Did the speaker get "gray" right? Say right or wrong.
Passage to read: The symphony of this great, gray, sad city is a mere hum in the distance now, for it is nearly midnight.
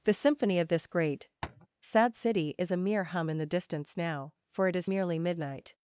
wrong